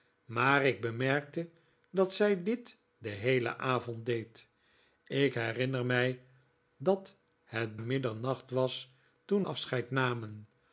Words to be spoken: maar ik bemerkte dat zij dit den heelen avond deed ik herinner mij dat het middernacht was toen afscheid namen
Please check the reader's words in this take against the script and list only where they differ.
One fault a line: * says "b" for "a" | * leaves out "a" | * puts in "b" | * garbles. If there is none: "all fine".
all fine